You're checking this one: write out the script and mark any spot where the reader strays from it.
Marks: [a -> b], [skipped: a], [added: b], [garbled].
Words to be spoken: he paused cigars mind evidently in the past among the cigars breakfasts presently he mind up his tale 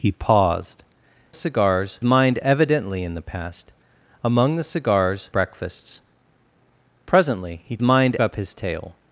he paused cigars mind evidently in the past among the cigars breakfasts presently he mind up his tale